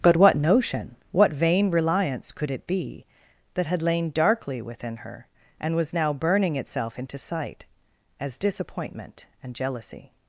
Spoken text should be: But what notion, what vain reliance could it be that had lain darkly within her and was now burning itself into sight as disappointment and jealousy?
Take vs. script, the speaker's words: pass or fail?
pass